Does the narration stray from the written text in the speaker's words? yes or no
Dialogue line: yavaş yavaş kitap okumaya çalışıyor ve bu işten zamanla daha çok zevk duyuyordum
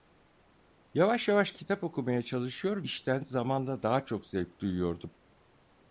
yes